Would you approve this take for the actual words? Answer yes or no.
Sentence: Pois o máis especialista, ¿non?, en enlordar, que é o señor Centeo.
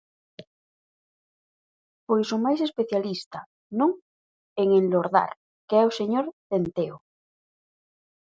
yes